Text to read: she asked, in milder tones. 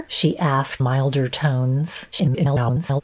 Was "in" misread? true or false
true